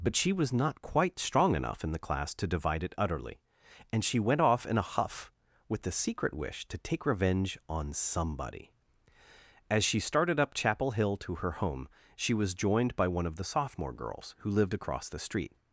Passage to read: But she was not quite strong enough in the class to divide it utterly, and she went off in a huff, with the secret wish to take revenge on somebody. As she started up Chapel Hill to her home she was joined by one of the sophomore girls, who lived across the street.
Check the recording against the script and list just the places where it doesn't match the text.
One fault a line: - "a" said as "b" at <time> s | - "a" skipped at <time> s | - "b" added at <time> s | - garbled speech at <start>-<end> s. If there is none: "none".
none